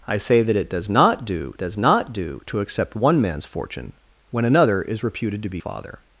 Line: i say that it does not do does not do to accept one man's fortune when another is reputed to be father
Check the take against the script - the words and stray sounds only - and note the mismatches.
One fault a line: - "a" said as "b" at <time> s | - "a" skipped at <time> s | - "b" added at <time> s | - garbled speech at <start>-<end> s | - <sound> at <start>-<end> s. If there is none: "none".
none